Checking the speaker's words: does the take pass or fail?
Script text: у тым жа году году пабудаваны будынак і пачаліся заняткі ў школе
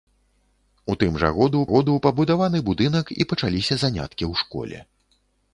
pass